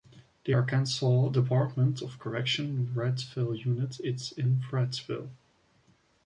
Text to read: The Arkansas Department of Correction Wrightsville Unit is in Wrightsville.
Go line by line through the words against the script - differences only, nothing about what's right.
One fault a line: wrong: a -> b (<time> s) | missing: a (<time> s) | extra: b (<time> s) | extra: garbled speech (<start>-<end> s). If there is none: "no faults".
no faults